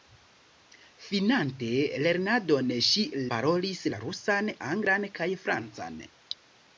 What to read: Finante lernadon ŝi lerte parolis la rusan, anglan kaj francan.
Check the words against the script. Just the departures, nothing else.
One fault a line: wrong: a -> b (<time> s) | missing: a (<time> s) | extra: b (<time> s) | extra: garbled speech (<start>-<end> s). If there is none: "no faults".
missing: lerte (3.0 s)